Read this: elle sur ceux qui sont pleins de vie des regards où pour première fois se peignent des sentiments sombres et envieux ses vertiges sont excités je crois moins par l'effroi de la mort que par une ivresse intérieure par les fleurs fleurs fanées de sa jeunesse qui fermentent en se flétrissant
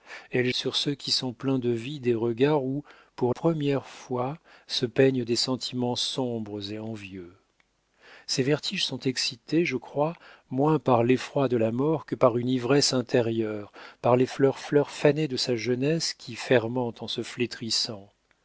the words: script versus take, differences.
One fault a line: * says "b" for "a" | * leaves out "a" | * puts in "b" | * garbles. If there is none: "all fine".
all fine